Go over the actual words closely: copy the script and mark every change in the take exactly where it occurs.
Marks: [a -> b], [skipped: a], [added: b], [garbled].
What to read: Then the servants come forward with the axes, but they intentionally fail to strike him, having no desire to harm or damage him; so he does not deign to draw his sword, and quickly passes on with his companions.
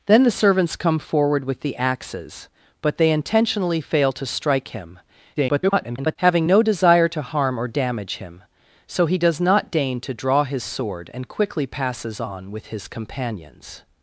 Then the servants come forward with the axes, but they intentionally fail to strike him, [garbled] having no desire to harm or damage him; so he does not deign to draw his sword, and quickly passes on with his companions.